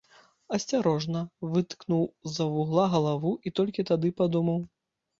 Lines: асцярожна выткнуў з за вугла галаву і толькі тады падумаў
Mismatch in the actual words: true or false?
false